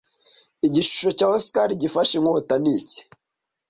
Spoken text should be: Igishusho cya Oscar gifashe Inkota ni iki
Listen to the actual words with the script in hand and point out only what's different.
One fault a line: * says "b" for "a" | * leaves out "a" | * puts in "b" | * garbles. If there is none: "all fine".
all fine